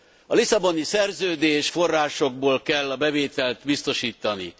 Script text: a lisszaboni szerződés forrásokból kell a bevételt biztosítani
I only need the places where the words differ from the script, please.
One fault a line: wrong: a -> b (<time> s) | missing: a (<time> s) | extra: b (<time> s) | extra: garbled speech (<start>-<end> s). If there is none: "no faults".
no faults